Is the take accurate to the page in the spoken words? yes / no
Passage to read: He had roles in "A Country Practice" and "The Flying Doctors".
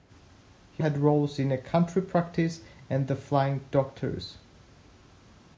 yes